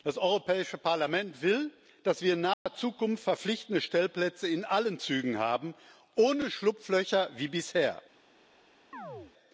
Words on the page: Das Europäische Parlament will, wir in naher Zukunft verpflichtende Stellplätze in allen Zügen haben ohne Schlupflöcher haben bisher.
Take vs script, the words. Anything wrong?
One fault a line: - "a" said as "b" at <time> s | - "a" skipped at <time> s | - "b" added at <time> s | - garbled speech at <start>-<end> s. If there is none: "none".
- "dass" added at 2.0 s
- "haben" said as "wie" at 7.4 s